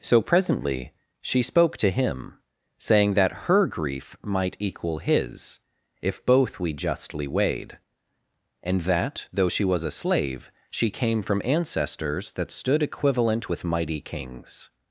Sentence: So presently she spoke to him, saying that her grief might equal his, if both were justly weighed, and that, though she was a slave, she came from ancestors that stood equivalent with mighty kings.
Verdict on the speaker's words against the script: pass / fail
fail